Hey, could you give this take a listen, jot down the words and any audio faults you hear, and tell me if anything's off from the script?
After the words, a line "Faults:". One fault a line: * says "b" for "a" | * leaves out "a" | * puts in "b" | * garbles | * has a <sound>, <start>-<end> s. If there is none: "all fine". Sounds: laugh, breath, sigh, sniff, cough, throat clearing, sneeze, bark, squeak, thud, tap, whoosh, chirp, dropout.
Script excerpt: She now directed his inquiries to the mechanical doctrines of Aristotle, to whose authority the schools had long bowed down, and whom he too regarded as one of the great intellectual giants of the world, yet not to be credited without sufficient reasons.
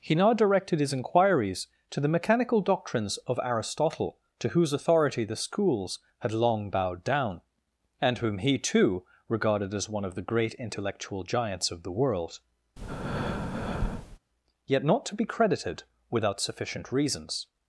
He now directed his inquiries to the mechanical doctrines of Aristotle, to whose authority the schools had long bowed down, and whom he too regarded as one of the great intellectual giants of the world, yet not to be credited without sufficient reasons.
Faults:
* says "He" for "She"
* has a breath, 12.8-14.2 s